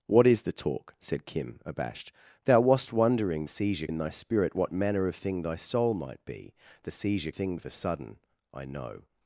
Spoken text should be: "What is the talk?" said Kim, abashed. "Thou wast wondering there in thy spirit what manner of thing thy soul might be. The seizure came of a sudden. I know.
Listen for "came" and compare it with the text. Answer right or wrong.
wrong